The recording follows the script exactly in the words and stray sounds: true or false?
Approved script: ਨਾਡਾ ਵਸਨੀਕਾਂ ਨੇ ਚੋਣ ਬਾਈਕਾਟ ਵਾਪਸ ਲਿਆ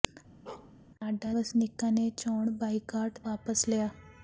false